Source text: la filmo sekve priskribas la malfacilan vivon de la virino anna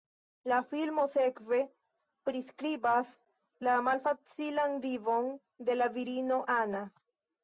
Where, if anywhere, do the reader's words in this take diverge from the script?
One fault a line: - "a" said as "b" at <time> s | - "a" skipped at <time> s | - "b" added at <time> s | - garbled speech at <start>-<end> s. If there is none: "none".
none